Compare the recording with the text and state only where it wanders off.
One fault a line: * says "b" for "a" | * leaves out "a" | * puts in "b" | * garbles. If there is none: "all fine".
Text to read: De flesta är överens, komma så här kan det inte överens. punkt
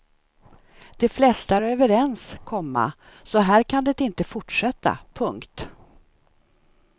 * says "fortsätta" for "överens"